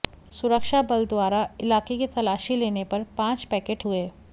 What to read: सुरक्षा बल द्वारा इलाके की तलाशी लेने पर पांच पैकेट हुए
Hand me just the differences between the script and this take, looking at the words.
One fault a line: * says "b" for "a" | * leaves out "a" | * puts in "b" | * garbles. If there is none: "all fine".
all fine